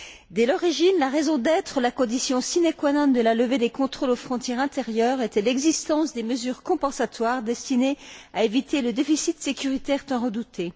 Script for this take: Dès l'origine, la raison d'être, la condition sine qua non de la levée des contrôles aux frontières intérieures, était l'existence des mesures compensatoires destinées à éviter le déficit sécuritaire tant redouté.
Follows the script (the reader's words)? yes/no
yes